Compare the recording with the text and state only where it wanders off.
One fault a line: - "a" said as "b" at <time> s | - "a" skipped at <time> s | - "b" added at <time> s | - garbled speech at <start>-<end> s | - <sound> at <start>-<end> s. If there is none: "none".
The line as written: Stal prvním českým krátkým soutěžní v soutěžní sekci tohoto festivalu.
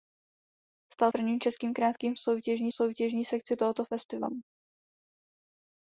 none